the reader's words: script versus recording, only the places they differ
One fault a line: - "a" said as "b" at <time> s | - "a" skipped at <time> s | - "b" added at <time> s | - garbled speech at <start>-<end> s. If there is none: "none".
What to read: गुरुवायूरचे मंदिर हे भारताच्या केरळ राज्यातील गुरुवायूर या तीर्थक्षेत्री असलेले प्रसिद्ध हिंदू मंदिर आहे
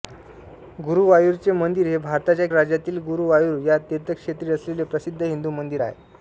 - "केरळ" skipped at 2.5 s